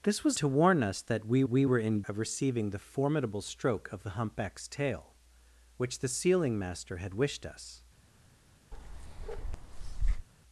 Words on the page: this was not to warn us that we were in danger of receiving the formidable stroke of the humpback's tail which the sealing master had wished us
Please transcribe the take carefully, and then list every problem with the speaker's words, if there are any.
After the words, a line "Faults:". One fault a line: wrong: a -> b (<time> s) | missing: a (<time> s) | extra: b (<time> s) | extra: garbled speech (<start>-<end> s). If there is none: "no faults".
this was to warn us that we we were in of receiving the formidable stroke of the humpback's tail which the sealing master had wished us
Faults:
missing: not (0.4 s)
extra: we (1.5 s)
missing: danger (2.0 s)